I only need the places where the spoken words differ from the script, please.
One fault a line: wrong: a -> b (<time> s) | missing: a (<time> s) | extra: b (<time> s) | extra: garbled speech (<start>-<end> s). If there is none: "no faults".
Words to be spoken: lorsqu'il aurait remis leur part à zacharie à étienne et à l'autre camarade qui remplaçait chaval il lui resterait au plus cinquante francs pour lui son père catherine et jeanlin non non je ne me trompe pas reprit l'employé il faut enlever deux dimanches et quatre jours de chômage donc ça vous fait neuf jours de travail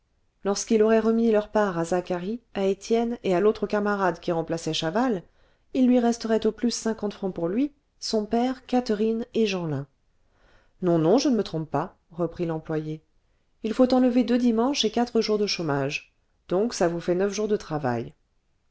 no faults